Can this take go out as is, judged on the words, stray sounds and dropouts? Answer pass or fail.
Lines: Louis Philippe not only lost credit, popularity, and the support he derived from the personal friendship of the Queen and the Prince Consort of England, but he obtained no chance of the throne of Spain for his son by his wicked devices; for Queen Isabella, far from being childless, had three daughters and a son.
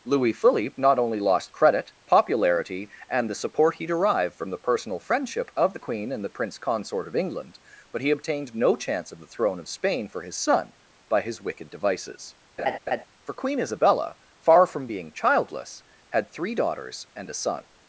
fail